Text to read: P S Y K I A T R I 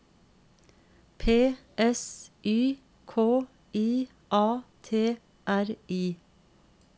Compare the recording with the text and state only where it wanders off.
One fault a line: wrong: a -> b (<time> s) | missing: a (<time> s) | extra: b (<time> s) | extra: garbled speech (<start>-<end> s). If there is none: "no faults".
no faults